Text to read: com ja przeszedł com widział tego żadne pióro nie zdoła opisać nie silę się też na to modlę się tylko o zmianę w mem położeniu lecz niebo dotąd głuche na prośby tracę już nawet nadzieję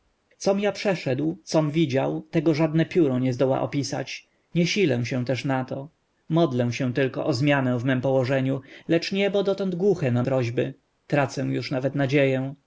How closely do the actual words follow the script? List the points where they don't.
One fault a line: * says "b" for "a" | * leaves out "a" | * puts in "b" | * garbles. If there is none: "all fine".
all fine